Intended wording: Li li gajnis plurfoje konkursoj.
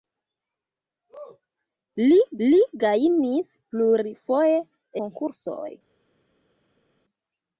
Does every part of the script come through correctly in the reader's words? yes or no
yes